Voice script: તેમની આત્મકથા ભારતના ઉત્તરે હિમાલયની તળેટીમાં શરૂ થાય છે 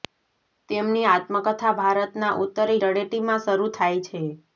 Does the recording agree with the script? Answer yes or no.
no